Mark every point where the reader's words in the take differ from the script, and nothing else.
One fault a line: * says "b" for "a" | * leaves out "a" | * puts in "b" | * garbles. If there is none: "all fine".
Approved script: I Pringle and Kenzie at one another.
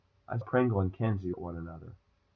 all fine